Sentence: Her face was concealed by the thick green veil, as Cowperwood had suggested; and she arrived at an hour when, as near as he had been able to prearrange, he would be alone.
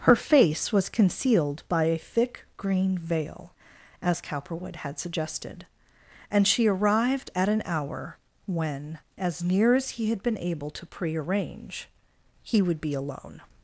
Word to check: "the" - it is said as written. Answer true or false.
false